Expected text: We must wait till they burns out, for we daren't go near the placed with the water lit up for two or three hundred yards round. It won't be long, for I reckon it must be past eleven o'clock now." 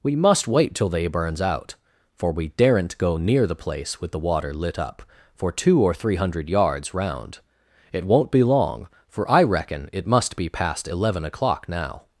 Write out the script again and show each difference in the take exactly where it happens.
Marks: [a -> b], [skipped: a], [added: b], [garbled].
We must wait till they burns out, for we daren't go near the [placed -> place] with the water lit up for two or three hundred yards round. It won't be long, for I reckon it must be past eleven o'clock now."